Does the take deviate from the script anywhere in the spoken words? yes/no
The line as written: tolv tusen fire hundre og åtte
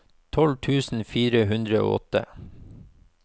no